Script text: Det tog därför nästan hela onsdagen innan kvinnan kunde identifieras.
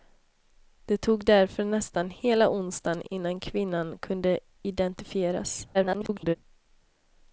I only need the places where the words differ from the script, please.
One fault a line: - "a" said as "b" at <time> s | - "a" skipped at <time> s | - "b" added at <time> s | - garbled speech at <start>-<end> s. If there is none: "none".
- garbled speech at 5.7-6.4 s